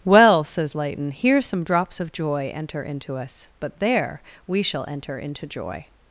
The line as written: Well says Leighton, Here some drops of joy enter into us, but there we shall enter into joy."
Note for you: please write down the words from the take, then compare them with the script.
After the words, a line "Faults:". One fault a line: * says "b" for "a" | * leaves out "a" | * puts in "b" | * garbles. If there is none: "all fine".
Well says Leighton, Here some drops of joy enter into us, but there we shall enter into joy."
Faults:
all fine